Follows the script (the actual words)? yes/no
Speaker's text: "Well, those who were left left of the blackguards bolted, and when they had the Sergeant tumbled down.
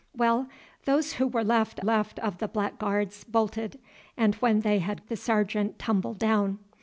yes